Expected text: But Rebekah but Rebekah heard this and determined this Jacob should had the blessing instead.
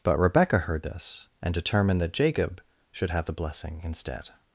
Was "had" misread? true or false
true